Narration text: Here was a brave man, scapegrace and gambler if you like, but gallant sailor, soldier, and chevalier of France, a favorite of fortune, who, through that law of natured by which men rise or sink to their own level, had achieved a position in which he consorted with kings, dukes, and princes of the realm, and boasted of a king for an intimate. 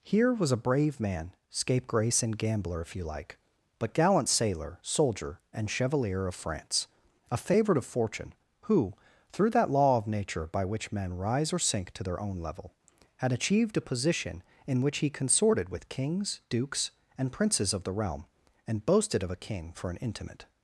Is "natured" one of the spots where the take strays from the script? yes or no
yes